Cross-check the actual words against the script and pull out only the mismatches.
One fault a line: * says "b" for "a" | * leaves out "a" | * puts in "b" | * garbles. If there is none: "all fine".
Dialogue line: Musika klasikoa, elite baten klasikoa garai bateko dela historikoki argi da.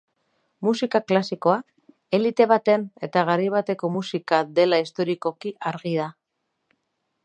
* says "eta" for "klasikoa"
* puts in "musika"